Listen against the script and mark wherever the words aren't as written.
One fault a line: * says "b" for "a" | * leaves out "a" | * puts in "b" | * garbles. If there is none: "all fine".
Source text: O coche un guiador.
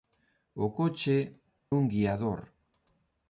all fine